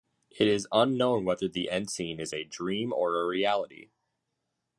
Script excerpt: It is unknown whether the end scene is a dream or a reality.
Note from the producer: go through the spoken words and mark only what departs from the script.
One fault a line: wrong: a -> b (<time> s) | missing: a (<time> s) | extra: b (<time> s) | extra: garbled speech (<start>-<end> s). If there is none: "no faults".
no faults